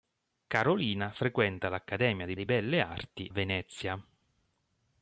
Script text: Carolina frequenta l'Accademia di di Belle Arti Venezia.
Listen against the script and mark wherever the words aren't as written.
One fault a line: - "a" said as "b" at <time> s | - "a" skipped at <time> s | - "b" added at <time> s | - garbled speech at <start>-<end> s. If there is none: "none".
none